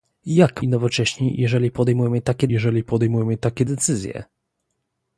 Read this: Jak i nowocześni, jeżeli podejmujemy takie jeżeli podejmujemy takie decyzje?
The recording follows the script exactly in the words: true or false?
true